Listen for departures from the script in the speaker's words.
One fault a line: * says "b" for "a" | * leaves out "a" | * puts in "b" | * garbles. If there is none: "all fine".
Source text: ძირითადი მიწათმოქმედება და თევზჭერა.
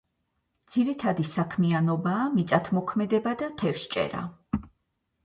* puts in "საქმიანობაა"